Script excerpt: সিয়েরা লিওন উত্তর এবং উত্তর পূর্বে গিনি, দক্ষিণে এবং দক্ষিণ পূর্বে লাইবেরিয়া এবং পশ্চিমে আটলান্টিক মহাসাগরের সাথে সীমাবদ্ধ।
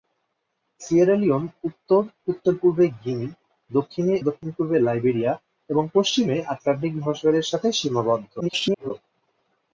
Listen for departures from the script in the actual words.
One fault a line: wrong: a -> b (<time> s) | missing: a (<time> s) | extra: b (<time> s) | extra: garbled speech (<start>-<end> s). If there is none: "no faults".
missing: এবং (2.0 s)
missing: এবং (4.1 s)
extra: garbled speech (8.4-8.9 s)